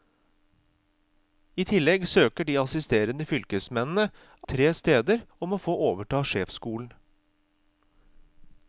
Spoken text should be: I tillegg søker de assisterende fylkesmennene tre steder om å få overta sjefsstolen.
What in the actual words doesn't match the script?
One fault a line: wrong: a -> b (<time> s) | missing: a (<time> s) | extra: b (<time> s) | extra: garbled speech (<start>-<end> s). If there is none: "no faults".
no faults